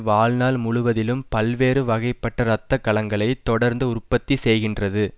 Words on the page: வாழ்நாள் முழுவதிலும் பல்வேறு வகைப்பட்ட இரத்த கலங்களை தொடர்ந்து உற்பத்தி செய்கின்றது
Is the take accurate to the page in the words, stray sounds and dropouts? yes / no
yes